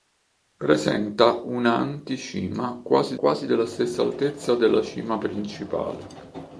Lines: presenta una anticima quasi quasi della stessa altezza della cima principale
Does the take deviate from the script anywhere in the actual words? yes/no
no